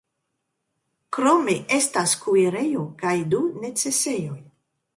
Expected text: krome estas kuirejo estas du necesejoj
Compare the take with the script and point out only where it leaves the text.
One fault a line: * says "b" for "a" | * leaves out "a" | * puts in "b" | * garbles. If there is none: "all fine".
* says "kaj" for "estas"